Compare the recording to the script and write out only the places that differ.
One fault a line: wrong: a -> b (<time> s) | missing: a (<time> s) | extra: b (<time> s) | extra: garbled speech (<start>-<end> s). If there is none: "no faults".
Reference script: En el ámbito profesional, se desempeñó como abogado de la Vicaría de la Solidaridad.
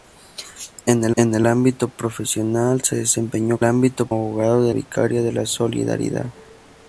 extra: en el (1.2 s)
wrong: como -> ámbito (3.6 s)
missing: la (4.7 s)